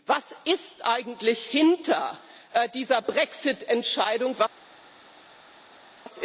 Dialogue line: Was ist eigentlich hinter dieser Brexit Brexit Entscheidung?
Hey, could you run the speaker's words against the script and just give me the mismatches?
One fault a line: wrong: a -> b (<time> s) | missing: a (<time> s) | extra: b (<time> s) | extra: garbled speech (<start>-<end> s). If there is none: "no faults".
missing: Brexit (3.6 s)